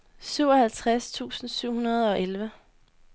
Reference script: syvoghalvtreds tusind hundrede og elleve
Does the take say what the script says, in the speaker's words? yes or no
no